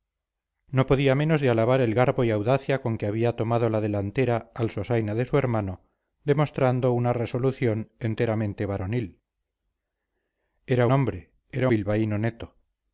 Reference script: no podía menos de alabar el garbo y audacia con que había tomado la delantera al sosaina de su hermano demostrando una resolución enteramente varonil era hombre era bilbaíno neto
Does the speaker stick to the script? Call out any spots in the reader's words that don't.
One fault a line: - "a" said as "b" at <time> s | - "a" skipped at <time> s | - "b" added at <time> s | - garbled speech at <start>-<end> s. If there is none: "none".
none